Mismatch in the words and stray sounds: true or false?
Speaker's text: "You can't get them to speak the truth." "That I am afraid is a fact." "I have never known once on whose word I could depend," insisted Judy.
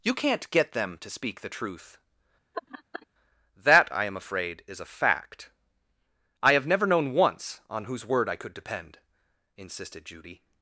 true